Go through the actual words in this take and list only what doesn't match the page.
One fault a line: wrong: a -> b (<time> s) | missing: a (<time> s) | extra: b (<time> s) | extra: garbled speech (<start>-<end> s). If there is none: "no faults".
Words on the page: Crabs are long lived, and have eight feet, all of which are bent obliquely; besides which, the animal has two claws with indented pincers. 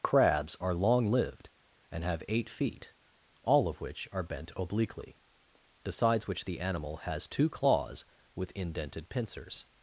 no faults